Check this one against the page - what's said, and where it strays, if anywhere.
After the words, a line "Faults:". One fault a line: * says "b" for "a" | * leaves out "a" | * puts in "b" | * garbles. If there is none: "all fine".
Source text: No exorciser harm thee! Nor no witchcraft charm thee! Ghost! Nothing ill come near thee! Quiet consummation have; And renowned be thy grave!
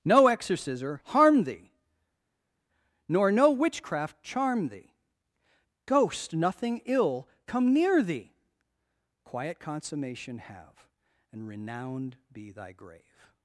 No exorciser harm thee! Nor no witchcraft charm thee! Ghost! Nothing ill come near thee! Quiet consummation have; And renowned be thy grave!
Faults:
all fine